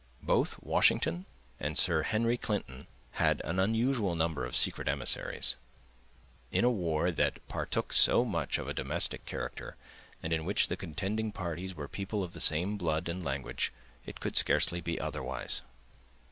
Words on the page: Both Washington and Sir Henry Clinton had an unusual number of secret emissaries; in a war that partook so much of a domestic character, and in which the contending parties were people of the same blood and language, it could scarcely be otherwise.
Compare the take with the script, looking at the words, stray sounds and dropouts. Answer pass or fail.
pass